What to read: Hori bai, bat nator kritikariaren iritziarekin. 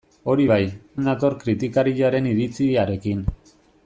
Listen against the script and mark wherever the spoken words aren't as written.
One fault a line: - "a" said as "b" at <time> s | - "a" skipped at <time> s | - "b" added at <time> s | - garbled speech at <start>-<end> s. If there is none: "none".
- "bat" skipped at 0.6 s